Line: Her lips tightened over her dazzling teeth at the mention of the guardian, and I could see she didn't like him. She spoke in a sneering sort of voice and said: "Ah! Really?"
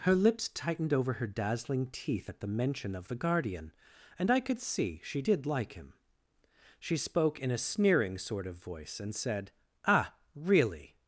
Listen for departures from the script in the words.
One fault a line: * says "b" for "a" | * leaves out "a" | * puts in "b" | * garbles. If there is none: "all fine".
* says "did" for "didn't"